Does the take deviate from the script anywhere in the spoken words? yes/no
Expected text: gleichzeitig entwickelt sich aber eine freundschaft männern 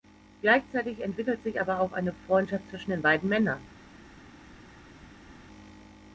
yes